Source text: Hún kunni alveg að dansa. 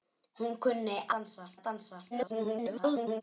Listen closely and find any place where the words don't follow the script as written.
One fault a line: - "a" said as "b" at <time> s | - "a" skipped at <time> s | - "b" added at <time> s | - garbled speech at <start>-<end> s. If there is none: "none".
- "alveg" said as "dansa" at 1.2 s
- garbled speech at 2.1-3.2 s